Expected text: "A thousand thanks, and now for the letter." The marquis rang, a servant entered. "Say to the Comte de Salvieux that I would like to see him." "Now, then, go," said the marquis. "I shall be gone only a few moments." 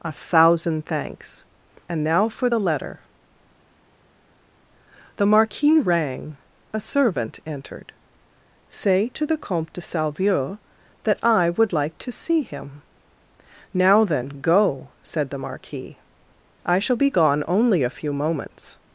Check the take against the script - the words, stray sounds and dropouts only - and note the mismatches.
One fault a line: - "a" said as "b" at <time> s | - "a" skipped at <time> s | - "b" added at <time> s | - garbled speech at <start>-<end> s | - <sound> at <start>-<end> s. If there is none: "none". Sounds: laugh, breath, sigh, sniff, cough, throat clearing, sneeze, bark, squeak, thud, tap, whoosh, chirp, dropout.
none